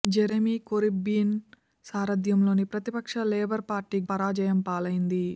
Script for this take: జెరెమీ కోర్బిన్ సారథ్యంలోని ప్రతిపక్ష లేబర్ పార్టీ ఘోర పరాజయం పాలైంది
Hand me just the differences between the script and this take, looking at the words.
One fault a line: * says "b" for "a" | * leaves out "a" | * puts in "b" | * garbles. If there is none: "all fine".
* leaves out "ఘోర"